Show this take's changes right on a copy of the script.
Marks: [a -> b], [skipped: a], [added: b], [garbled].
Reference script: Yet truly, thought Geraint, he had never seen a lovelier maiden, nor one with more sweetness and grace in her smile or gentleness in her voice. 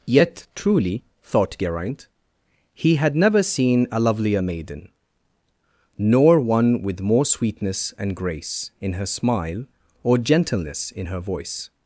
Yet truly, thought Geraint, he had never seen a lovelier maiden, nor one with more sweetness and grace in her smile or gentleness in her voice.